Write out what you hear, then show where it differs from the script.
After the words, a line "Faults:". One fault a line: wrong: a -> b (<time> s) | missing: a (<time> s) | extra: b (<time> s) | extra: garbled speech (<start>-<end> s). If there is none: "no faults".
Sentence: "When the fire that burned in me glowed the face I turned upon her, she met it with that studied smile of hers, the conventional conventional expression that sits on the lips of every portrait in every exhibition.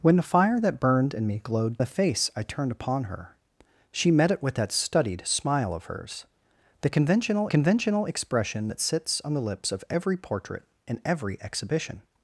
"When the fire that burned in me glowed the face I turned upon her, she met it with that studied smile of hers, the conventional conventional expression that sits on the lips of every portrait in every exhibition.
Faults:
no faults